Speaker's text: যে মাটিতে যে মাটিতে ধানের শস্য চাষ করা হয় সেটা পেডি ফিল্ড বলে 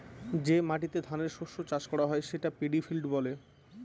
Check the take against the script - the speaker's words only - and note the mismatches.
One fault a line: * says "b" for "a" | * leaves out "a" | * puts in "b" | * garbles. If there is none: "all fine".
* leaves out "যে মাটিতে"